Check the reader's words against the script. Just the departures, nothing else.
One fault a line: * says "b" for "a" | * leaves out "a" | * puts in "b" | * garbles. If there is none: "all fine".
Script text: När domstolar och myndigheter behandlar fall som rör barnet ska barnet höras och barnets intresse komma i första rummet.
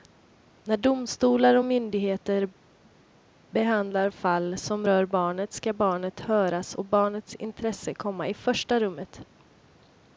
all fine